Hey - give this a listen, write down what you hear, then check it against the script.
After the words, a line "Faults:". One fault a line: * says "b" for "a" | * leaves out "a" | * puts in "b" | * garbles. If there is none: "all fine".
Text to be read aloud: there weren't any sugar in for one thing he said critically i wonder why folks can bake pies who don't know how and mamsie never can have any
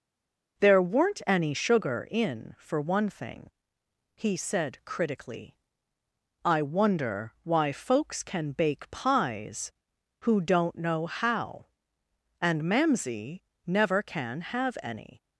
there weren't any sugar in for one thing he said critically i wonder why folks can bake pies who don't know how and mamsie never can have any
Faults:
all fine